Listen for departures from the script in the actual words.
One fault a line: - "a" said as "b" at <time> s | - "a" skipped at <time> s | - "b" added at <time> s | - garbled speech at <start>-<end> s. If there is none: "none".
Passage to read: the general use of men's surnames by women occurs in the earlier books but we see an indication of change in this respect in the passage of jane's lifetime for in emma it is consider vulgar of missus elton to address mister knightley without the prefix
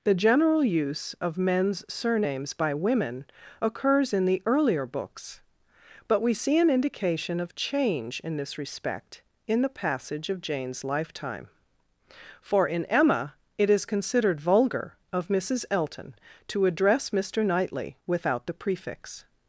- "consider" said as "considered" at 13.8 s